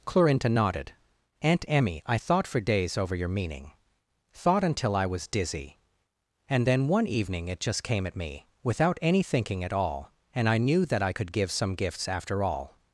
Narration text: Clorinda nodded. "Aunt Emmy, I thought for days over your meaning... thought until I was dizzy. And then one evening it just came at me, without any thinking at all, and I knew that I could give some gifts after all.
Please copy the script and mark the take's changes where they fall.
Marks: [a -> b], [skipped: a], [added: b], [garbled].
Clorinda nodded. "Aunt Emmy, I thought for days over your meaning... thought until I was dizzy. And then one evening it just came at me, without any thinking at all, and I knew that I could give some gifts after all.